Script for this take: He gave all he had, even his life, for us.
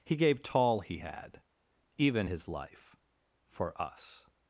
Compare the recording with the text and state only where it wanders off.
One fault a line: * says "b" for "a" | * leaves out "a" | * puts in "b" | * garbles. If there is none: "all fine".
* says "tall" for "all"